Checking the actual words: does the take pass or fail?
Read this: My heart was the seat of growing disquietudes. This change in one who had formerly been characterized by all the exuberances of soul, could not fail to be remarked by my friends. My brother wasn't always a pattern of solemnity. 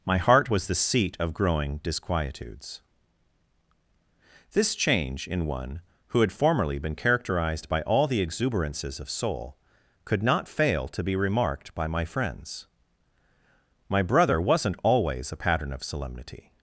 pass